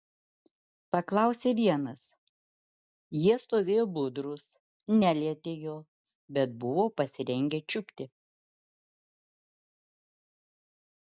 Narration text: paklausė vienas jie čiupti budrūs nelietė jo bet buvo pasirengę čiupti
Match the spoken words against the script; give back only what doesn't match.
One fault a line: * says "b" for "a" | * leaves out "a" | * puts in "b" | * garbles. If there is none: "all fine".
* says "stovėjo" for "čiupti"